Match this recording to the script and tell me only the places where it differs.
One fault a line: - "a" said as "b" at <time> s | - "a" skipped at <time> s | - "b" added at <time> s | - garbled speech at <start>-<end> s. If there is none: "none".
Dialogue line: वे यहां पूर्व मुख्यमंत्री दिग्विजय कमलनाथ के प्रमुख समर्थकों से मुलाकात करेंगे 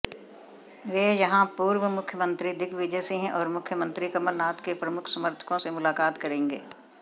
- "सिंह और मुख्यमंत्री" added at 3.0 s